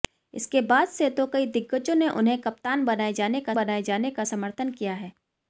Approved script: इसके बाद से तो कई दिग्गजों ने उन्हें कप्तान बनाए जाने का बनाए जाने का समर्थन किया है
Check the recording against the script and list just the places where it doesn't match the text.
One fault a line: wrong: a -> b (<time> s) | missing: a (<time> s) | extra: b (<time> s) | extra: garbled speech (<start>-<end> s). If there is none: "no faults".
no faults